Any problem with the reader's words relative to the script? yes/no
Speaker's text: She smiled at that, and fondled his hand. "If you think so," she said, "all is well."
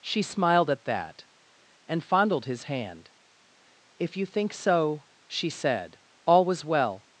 yes